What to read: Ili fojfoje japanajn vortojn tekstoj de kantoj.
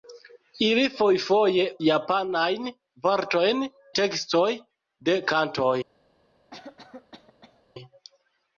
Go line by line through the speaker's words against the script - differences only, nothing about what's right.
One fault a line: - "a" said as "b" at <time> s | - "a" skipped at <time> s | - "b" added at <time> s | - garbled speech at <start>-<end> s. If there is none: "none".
none